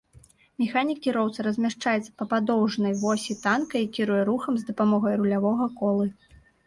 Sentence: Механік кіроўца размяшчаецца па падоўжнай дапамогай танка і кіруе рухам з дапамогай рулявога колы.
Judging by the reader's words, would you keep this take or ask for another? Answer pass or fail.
fail